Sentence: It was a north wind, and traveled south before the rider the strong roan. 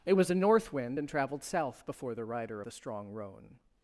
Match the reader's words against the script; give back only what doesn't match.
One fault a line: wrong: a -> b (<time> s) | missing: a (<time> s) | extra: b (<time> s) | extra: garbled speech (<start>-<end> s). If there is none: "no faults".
no faults